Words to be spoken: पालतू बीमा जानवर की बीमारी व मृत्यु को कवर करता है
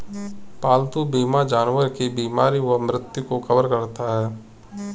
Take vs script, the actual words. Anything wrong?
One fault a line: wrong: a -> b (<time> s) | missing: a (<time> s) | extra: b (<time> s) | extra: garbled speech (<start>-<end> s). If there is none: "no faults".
no faults